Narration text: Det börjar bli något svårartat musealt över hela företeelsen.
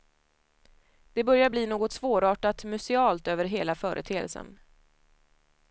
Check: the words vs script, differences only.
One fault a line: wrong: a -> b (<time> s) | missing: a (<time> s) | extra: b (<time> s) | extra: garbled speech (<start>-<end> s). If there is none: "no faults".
no faults